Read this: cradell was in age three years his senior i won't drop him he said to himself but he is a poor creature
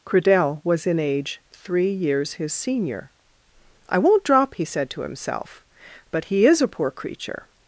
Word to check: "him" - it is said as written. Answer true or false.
false